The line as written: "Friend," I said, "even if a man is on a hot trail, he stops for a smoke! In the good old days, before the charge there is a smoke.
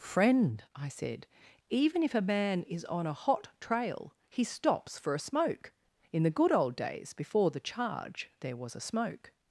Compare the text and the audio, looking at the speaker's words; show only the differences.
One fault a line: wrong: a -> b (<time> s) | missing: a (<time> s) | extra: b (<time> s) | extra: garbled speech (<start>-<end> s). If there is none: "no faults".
wrong: is -> was (8.6 s)